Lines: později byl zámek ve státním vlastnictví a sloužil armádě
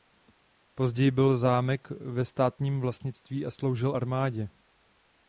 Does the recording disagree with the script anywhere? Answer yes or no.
no